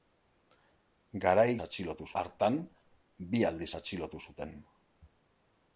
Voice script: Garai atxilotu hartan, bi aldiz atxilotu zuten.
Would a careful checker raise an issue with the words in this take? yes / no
no